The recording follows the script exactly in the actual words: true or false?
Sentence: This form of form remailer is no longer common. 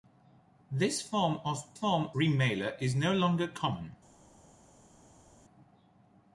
true